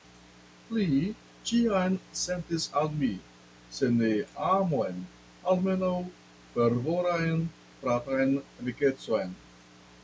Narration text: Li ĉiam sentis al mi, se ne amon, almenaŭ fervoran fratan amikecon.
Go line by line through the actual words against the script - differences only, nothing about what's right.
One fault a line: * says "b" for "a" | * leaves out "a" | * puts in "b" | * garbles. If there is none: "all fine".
all fine